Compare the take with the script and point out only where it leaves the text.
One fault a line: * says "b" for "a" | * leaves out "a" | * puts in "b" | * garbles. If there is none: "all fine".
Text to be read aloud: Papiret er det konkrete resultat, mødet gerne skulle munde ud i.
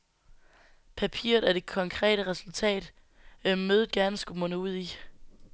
all fine